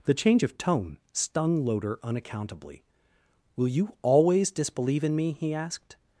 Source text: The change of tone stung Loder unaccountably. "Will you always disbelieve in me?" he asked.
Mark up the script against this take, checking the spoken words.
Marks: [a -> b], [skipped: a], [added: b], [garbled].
The change of tone stung Loder unaccountably. "Will you always disbelieve in me?" he asked.